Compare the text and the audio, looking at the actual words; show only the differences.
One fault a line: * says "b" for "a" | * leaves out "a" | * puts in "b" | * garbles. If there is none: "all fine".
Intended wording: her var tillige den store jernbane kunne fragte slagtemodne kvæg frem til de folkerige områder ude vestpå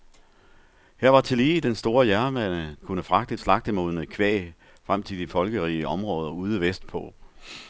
all fine